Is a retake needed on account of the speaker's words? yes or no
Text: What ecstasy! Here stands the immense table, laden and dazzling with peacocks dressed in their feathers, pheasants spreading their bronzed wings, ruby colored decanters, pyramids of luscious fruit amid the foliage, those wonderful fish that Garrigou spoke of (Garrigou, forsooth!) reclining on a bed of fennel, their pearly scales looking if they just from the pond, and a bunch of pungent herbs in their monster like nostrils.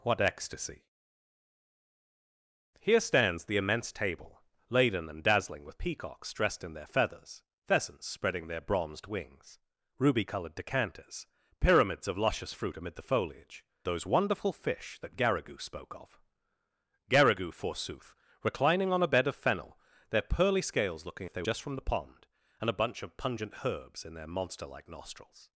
no